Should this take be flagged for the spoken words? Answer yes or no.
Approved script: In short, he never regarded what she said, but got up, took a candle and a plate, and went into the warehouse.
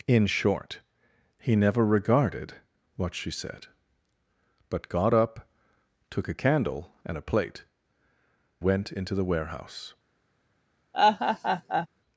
yes